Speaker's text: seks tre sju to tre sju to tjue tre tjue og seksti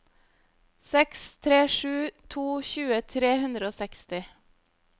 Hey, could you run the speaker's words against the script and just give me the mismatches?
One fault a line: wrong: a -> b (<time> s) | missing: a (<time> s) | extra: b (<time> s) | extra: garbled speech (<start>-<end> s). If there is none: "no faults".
missing: tre sju to (2.5 s)
wrong: tjue -> hundre (3.4 s)